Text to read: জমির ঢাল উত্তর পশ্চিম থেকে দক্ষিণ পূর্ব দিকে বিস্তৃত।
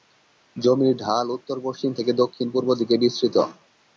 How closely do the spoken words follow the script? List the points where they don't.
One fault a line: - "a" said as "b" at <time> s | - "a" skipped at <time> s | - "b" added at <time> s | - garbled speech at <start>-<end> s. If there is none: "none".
none